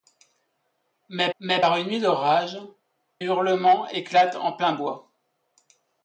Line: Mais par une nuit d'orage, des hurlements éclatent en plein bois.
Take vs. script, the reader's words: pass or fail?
fail